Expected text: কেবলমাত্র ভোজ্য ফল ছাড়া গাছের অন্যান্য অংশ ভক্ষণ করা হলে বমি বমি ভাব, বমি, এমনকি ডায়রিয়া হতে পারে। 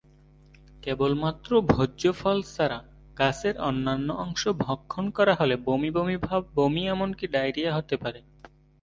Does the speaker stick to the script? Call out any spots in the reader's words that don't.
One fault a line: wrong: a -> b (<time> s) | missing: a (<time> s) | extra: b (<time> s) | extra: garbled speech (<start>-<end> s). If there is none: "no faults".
no faults